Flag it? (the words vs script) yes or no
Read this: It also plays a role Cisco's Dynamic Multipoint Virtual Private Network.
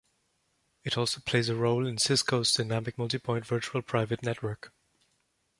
yes